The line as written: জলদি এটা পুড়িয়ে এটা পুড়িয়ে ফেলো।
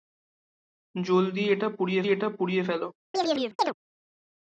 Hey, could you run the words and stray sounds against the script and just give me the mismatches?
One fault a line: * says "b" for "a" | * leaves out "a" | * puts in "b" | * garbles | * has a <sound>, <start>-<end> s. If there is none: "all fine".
* has a chirp, 3.1-3.7 s